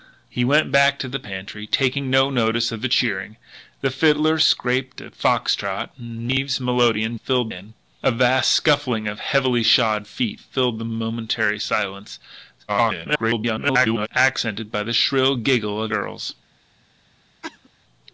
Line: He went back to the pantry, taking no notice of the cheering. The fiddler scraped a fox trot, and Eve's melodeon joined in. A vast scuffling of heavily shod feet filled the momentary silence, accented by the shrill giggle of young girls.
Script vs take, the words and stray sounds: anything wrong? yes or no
yes